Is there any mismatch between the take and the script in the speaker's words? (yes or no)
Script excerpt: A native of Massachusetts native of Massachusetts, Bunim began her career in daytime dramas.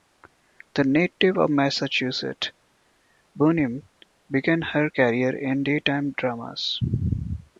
yes